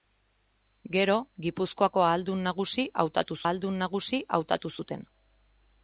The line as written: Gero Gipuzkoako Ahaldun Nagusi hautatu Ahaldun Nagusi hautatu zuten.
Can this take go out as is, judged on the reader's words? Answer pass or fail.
pass